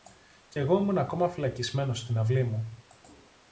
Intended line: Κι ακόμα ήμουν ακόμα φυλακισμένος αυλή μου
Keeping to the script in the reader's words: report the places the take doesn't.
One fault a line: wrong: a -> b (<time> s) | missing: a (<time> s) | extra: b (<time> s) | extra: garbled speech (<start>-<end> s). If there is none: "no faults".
wrong: ακόμα -> εγώ (0.6 s)
extra: στην (2.0 s)